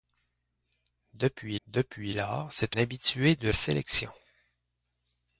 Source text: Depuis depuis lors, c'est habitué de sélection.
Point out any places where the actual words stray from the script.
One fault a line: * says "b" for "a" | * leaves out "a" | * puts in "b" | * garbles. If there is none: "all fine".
all fine